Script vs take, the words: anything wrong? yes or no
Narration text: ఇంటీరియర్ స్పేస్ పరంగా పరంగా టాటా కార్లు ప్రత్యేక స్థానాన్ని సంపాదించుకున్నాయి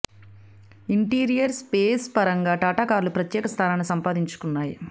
yes